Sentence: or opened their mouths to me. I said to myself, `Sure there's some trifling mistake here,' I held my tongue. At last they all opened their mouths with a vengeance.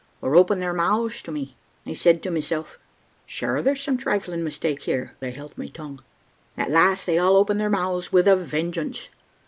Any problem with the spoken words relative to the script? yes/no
no